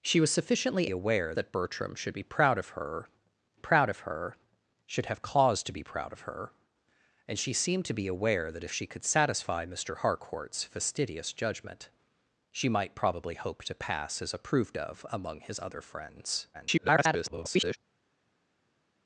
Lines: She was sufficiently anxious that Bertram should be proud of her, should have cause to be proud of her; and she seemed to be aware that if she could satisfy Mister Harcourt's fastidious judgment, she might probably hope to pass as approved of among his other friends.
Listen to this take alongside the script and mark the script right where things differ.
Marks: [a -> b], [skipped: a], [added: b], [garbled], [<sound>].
She was sufficiently [anxious -> aware] that Bertram should be proud of her, [added: proud of her] should have cause to be proud of her; and she seemed to be aware that if she could satisfy Mister Harcourt's fastidious judgment, she might probably hope to pass as approved of among his other friends. [garbled]